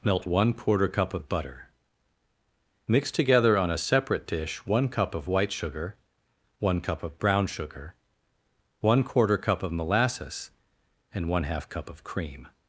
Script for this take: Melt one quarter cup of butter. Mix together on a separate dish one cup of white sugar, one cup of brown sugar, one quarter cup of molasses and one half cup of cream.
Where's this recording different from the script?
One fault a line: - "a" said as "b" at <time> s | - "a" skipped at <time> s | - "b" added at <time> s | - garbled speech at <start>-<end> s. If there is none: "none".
none